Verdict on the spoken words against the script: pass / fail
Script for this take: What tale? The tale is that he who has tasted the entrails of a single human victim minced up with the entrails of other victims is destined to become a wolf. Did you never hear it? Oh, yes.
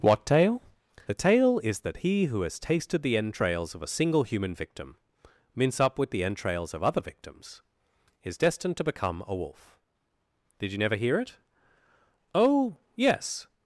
fail